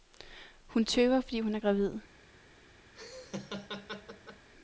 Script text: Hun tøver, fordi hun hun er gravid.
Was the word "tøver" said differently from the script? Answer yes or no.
no